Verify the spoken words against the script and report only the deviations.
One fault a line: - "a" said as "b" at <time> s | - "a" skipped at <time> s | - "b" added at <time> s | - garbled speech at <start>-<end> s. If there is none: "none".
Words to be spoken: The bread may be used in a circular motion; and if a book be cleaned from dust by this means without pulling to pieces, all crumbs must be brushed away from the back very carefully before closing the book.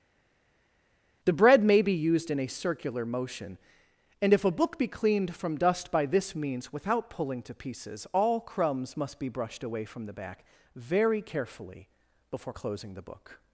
none